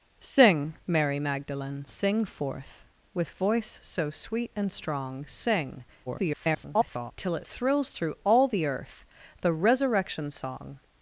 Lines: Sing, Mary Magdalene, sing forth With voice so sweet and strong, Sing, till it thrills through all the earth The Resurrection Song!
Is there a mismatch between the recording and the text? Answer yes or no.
yes